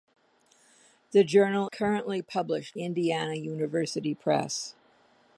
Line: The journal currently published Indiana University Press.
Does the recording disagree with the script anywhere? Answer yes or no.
no